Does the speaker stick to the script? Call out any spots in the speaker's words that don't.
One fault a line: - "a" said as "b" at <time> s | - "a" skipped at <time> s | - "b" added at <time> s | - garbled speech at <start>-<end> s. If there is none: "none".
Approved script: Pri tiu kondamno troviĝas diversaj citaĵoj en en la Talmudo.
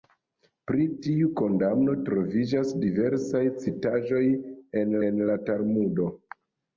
none